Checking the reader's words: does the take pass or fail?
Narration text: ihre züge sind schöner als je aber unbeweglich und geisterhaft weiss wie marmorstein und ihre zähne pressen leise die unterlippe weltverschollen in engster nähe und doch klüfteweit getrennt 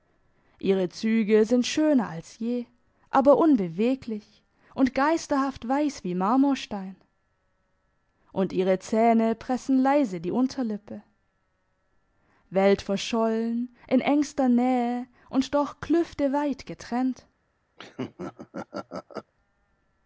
pass